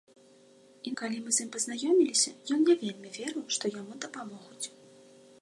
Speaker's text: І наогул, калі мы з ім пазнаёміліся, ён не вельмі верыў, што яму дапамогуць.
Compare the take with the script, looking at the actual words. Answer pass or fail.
fail